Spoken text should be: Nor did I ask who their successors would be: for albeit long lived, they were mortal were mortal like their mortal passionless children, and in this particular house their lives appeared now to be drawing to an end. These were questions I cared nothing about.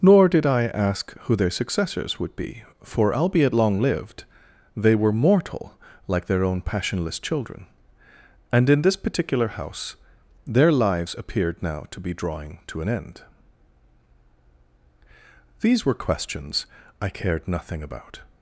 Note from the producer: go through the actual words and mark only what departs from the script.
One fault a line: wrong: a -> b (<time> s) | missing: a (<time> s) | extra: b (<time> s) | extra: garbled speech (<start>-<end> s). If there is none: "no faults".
missing: were mortal (5.8 s)
wrong: mortal -> own (6.4 s)